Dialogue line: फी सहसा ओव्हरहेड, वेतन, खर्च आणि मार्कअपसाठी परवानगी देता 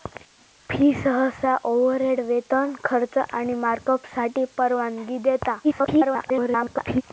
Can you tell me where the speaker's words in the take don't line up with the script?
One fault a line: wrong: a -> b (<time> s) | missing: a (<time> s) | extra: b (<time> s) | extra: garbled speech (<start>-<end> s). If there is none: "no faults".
extra: garbled speech (5.6-7.0 s)